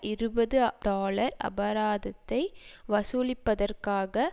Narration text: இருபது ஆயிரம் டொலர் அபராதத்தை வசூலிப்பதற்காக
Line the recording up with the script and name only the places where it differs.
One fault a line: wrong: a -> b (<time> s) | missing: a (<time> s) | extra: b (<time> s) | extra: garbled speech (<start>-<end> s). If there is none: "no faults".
missing: ஆயிரம் (0.6 s)